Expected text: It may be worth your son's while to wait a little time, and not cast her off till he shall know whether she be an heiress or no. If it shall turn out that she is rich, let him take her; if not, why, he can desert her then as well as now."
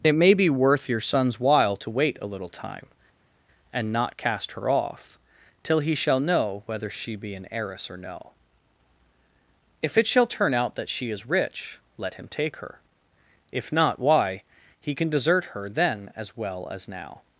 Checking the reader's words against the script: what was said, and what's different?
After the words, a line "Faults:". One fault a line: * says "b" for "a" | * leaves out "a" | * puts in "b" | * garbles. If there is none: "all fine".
It may be worth your son's while to wait a little time, and not cast her off till he shall know whether she be an heiress or no. If it shall turn out that she is rich, let him take her; if not, why, he can desert her then as well as now."
Faults:
all fine